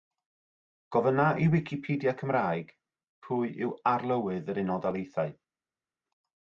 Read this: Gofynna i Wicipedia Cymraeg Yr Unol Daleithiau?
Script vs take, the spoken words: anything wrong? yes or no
yes